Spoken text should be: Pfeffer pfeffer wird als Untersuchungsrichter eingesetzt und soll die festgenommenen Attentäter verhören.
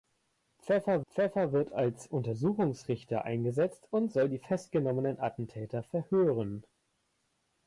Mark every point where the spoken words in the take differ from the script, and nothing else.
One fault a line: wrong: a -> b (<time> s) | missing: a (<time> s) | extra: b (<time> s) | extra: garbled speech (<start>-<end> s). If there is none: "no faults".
no faults